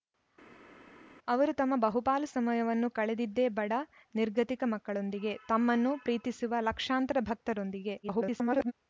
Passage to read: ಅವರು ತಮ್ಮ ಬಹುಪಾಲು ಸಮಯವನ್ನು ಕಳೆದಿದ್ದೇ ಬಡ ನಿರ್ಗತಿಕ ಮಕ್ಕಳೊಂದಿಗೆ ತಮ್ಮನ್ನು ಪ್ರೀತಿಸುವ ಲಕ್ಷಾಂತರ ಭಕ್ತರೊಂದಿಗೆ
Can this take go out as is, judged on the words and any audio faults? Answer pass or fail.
fail